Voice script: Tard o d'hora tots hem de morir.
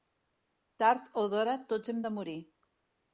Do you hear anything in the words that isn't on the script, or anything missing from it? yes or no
no